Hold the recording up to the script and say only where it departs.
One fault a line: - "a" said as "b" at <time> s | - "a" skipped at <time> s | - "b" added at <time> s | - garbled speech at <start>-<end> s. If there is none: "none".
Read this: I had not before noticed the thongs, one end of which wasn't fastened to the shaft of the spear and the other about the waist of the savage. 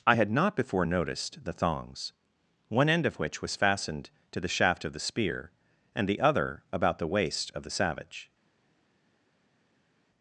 - "wasn't" said as "was" at 3.4 s